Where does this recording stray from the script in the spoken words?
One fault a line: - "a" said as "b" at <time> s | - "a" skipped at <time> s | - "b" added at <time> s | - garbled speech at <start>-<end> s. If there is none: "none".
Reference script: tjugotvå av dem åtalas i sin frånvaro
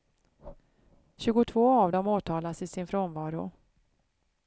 none